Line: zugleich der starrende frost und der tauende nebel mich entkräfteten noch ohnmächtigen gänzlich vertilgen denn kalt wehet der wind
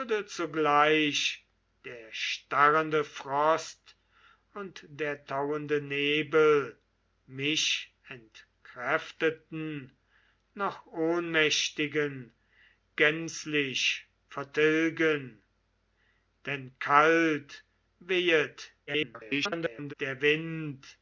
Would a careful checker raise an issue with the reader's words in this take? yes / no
yes